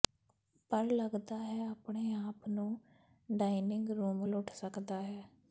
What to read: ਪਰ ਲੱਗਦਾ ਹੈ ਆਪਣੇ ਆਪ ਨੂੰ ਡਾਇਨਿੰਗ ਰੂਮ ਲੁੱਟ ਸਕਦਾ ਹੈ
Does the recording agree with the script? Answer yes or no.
yes